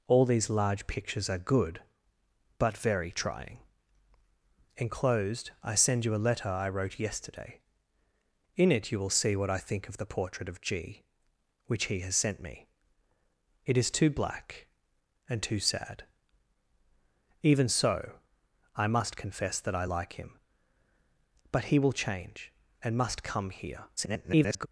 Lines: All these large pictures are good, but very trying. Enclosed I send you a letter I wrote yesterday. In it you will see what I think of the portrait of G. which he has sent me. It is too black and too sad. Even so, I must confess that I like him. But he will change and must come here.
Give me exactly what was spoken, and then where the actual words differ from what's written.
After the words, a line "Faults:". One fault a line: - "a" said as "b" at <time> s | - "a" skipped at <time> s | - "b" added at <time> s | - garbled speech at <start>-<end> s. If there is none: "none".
All these large pictures are good, but very trying. Enclosed I send you a letter I wrote yesterday. In it you will see what I think of the portrait of G. which he has sent me. It is too black and too sad. Even so, I must confess that I like him. But he will change and must come here. [garbled]
Faults:
- garbled speech at 24.0-24.7 s